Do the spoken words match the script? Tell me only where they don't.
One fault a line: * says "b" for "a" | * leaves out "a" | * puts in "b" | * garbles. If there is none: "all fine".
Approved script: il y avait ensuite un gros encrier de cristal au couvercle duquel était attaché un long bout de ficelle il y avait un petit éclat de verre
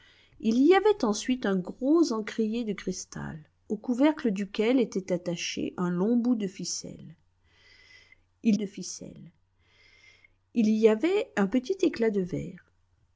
* puts in "de ficelle il"